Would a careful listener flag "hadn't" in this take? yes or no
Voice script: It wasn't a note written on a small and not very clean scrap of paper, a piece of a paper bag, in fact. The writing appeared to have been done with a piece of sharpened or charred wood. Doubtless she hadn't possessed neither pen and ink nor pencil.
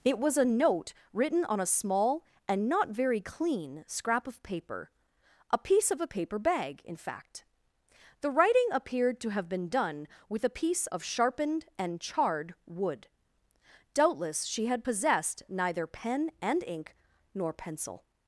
yes